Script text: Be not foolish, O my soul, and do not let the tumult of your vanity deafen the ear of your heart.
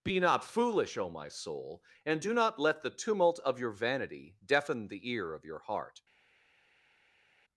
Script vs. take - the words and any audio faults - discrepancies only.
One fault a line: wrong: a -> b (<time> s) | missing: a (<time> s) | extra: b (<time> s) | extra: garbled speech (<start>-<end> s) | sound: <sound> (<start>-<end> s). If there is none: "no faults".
no faults